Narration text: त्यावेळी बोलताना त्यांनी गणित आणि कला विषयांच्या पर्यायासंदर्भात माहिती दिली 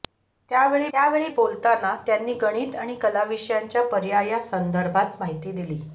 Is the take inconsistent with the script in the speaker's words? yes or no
yes